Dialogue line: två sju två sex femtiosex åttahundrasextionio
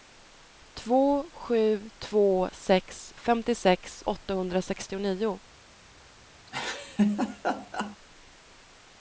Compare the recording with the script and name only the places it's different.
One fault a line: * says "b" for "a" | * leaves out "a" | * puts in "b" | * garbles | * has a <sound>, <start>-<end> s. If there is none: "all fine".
* has a laugh, 6.5-8.0 s